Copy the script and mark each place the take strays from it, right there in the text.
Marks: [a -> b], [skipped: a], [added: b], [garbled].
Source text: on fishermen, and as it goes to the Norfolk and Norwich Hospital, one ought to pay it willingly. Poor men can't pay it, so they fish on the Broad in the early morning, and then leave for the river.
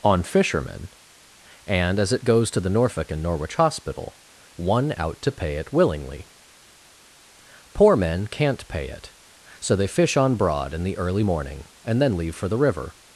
on fishermen, and as it goes to the Norfolk and Norwich Hospital, one [ought -> out] to pay it willingly. Poor men can't pay it, so they fish on [skipped: the] Broad in the early morning, and then leave for the river.